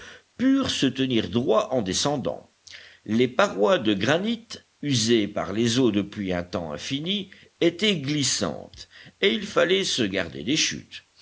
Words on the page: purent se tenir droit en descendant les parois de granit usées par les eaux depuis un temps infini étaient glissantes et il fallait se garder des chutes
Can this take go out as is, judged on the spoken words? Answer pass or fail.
pass